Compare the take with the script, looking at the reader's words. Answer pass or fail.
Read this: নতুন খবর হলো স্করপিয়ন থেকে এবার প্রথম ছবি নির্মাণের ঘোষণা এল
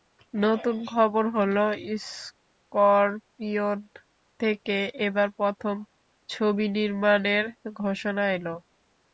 pass